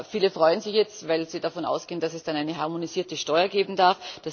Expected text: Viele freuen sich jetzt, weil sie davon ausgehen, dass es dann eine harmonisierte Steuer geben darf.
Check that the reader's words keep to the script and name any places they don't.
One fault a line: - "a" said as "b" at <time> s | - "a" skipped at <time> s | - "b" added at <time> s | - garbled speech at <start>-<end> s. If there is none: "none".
none